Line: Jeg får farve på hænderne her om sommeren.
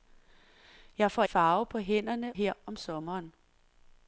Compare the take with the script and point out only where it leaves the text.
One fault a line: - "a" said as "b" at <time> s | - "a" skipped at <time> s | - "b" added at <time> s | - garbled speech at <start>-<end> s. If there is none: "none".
none